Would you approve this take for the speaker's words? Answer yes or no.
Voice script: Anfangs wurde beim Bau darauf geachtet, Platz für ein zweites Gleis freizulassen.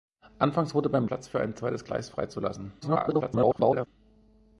no